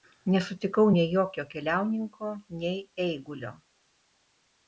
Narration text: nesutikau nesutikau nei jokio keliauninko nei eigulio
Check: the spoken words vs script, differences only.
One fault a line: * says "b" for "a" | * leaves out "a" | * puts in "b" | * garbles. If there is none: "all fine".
* leaves out "nesutikau"